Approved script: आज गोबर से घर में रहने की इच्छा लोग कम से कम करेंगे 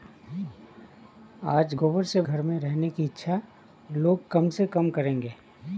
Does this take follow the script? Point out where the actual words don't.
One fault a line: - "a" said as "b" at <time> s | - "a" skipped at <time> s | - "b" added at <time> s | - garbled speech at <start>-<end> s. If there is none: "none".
none